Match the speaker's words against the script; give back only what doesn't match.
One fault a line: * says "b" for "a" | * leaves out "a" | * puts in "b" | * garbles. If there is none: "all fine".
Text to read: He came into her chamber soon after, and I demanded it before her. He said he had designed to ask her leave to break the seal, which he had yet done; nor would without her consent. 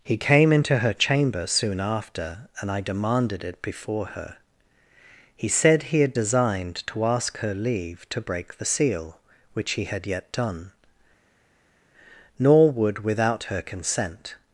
all fine